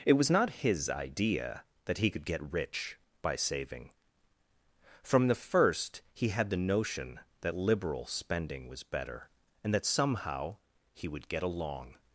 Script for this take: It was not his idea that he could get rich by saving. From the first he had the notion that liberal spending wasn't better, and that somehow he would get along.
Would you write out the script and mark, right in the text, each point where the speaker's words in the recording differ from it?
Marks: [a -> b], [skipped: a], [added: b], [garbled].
It was not his idea that he could get rich by saving. From the first he had the notion that liberal spending [wasn't -> was] better, and that somehow he would get along.